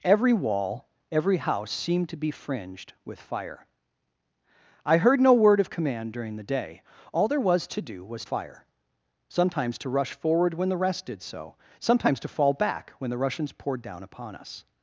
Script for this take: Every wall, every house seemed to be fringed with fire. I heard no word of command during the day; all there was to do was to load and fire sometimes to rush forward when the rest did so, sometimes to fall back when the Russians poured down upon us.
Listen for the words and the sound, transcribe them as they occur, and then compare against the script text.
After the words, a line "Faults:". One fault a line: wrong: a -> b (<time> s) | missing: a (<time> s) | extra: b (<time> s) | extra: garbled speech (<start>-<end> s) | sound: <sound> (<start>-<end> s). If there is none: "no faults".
Every wall, every house seemed to be fringed with fire. I heard no word of command during the day; all there was to do was fire sometimes to rush forward when the rest did so, sometimes to fall back when the Russians poured down upon us.
Faults:
missing: to load and (8.2 s)